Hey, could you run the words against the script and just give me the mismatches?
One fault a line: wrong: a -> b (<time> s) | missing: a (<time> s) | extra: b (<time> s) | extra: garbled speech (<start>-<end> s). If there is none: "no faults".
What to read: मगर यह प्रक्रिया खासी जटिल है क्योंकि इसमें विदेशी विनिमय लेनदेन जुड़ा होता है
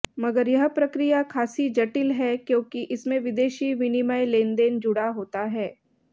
no faults